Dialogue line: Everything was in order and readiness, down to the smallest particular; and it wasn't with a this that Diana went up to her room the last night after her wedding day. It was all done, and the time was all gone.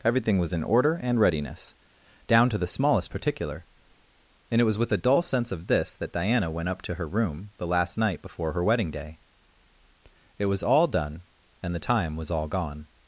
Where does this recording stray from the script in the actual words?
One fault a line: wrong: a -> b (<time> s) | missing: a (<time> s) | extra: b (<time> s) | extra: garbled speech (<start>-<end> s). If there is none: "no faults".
wrong: wasn't -> was (4.6 s)
extra: dull sense of (4.9 s)
wrong: after -> before (8.2 s)